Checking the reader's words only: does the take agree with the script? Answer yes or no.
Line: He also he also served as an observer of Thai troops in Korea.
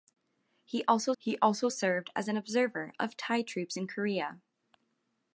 yes